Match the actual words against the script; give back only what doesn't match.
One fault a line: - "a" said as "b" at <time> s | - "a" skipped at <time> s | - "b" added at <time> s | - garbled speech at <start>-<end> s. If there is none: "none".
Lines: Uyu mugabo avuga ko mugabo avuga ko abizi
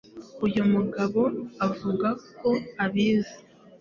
- "mugabo avuga ko" skipped at 2.5 s